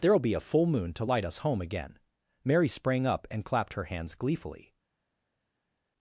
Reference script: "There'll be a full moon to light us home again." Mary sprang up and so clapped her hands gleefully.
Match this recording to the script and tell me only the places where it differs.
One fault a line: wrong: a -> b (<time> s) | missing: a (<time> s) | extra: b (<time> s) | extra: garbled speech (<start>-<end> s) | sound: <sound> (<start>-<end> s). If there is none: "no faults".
missing: so (3.4 s)